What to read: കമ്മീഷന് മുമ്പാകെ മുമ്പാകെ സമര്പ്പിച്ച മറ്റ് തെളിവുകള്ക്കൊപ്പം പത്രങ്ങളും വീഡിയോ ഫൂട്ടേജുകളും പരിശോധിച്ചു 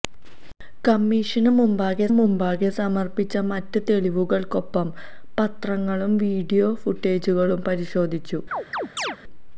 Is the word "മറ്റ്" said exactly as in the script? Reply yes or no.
yes